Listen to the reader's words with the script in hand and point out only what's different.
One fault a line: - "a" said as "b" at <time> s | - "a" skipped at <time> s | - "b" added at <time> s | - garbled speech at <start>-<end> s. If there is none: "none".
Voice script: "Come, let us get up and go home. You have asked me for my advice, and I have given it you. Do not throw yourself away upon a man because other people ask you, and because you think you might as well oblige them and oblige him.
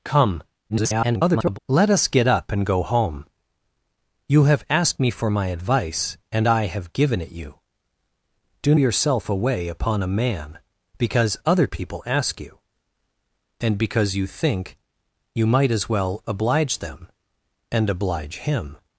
- garbled speech at 0.7-1.6 s
- "not throw" skipped at 8.7 s